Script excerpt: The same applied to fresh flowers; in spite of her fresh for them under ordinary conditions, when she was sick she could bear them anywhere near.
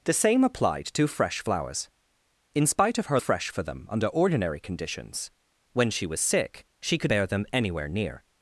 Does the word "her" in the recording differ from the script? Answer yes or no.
no